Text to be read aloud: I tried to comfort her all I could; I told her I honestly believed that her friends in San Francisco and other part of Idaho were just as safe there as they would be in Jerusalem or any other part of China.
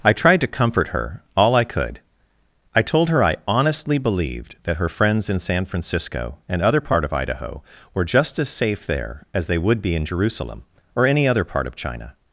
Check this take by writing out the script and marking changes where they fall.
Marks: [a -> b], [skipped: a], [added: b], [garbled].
I tried to comfort her all I could; I told her I honestly believed that her friends in San Francisco and other part of Idaho were just as safe there as they would be in Jerusalem or any other part of China.